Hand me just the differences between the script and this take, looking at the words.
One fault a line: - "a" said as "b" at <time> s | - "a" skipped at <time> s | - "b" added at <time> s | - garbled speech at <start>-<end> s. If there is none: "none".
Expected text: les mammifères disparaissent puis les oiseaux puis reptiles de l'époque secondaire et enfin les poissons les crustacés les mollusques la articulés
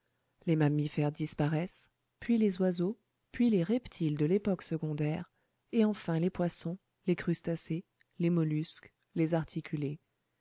- "les" added at 3.5 s
- "la" said as "les" at 9.1 s